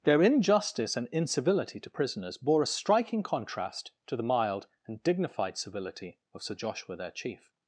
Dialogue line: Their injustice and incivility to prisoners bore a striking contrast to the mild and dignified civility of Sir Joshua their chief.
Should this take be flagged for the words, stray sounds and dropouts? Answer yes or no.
no